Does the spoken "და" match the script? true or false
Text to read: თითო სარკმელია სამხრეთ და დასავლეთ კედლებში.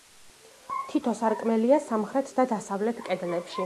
true